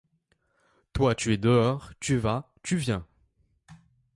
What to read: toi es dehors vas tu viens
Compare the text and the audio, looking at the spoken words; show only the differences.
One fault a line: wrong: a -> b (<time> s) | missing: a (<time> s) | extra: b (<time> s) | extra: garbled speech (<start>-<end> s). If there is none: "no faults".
extra: tu (1.1 s)
extra: tu (2.0 s)